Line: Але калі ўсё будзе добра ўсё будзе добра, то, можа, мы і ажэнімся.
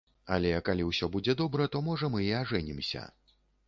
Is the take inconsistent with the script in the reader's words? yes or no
yes